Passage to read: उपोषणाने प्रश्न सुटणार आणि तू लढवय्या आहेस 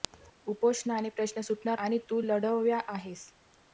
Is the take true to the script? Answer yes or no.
yes